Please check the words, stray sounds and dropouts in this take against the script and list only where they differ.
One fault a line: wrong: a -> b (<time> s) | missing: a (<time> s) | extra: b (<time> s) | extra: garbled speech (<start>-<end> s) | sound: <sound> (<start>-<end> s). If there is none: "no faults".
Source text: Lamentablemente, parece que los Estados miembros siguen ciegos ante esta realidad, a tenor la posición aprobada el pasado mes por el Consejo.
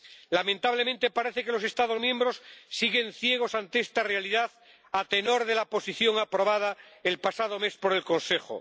extra: de (5.5 s)